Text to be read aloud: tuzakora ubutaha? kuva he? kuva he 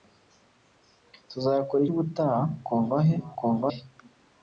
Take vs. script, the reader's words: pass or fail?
pass